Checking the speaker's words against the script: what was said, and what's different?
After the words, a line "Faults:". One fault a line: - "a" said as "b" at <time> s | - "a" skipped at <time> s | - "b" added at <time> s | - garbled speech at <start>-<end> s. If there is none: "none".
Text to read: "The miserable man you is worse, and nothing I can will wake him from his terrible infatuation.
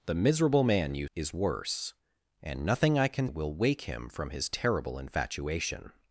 "The miserable man you is worse, and nothing I can will wake him from his terrible infatuation.
Faults:
none